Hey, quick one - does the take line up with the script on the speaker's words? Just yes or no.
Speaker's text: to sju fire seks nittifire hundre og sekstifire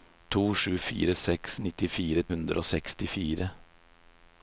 yes